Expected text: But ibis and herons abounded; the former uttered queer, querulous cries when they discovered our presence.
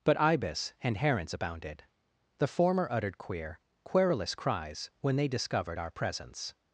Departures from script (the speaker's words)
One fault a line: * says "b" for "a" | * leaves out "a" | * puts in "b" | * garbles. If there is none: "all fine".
all fine